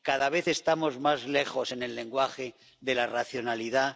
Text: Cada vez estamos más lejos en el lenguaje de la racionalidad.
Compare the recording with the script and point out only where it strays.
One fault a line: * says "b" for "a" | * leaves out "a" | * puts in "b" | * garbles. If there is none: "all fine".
all fine